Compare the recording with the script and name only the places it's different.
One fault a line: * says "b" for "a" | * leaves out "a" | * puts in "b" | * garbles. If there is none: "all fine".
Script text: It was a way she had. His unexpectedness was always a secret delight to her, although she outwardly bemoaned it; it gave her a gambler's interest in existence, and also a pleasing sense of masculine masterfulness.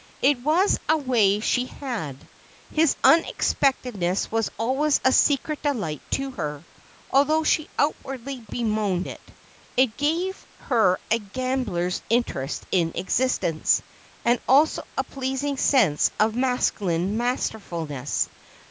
all fine